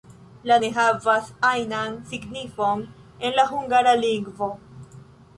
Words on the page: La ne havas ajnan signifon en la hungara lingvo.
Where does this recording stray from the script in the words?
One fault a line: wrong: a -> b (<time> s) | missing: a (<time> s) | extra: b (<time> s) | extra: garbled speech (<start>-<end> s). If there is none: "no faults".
no faults